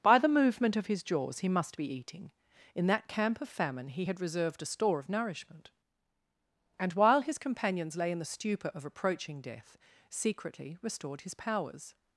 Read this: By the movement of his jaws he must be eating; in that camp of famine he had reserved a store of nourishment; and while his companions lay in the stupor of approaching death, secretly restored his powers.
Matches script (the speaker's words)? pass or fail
pass